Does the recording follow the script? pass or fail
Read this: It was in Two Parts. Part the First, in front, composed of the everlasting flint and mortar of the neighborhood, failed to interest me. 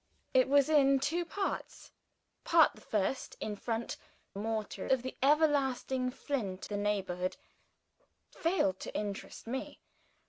fail